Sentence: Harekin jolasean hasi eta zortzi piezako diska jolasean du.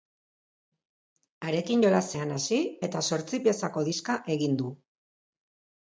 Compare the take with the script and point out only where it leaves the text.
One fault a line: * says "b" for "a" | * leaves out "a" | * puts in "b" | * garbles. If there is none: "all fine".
* says "egin" for "jolasean"